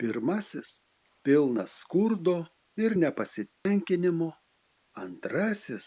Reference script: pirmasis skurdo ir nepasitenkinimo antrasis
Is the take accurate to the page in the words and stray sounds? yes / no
no